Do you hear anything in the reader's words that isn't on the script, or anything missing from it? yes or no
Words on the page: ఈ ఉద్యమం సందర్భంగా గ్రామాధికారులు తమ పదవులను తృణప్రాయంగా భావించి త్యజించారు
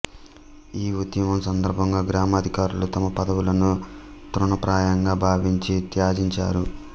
no